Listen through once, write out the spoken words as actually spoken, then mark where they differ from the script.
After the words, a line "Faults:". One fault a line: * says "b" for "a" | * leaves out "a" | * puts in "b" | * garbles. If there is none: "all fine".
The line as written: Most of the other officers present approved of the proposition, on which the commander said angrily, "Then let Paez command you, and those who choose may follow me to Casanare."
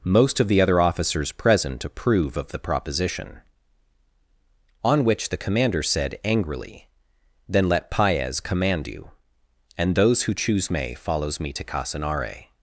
Most of the other officers present approve of the proposition, on which the commander said angrily, "Then let Paez command you, and those who choose may follows me to Casanare."
Faults:
* says "approve" for "approved"
* says "follows" for "follow"